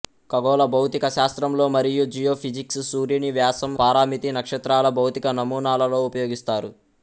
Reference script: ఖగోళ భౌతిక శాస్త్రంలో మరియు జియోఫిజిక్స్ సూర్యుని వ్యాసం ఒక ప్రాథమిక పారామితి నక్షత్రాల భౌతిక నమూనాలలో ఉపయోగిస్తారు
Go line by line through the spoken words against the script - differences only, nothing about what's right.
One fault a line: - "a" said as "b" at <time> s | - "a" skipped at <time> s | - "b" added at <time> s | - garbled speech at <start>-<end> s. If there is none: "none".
- "ఒక ప్రాథమిక" skipped at 3.7 s